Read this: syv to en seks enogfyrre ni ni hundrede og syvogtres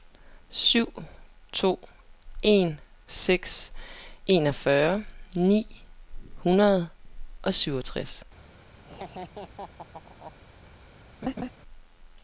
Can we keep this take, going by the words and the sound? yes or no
no